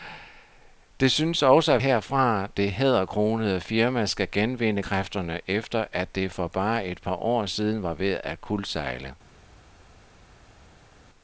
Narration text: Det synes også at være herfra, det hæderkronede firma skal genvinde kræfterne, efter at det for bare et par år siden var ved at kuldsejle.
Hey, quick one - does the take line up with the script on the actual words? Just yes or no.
no